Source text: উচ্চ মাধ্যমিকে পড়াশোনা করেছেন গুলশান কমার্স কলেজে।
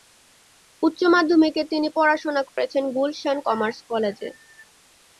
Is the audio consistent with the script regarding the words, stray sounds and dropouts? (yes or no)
no